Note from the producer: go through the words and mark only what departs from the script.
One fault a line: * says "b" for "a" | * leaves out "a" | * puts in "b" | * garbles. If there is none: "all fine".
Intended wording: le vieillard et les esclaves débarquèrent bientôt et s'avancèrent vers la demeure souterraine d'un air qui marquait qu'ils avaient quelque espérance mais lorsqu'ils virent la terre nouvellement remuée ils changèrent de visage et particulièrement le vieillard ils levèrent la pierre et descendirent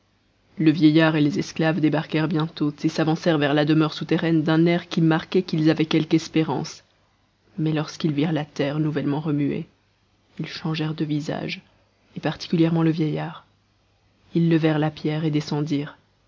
all fine